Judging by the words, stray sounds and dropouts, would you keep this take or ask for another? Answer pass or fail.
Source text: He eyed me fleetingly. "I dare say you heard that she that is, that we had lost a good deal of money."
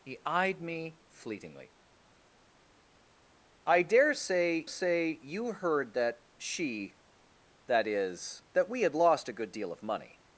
fail